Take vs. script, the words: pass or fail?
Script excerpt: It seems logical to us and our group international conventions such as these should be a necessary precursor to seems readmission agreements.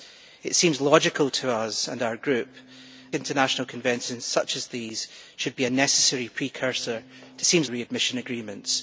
pass